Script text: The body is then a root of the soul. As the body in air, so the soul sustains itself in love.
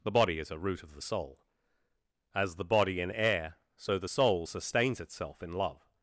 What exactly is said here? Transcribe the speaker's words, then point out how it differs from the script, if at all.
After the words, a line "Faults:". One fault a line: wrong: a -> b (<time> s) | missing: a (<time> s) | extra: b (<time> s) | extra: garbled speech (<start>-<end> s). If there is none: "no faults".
The body is a root of the soul. As the body in air, so the soul sustains itself in love.
Faults:
missing: then (0.5 s)